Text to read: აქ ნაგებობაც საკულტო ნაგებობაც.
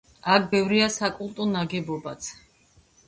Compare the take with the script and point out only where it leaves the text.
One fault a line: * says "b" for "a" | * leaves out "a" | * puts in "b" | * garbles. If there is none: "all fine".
* says "ბევრია" for "ნაგებობაც"